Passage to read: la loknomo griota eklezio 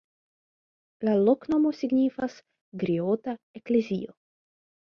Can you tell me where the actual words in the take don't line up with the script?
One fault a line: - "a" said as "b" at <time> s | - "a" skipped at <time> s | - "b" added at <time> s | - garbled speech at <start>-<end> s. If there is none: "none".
- "signifas" added at 1.8 s